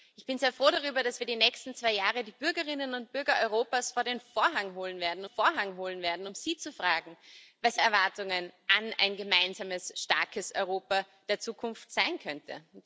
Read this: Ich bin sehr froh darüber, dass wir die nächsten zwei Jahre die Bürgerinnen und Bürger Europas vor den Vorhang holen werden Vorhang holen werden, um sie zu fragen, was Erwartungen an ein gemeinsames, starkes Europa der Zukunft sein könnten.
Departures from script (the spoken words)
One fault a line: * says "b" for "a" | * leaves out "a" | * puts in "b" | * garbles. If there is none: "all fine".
all fine